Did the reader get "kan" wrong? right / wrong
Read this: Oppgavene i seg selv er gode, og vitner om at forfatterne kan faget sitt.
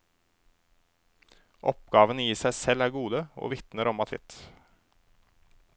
wrong